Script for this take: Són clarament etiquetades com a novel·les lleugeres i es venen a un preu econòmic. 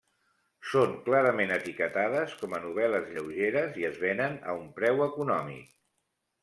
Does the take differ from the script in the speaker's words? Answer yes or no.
no